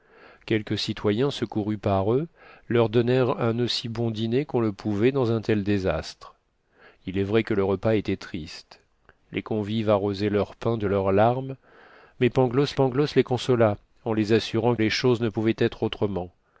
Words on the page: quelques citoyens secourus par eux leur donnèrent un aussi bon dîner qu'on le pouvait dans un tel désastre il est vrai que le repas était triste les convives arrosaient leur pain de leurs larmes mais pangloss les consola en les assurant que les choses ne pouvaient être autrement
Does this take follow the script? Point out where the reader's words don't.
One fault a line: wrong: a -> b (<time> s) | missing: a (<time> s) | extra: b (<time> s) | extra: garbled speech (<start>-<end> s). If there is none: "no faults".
extra: pangloss (12.7 s)
missing: que (14.8 s)